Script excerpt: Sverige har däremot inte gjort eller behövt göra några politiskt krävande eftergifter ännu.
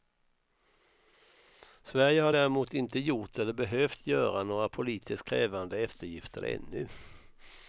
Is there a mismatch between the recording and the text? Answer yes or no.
no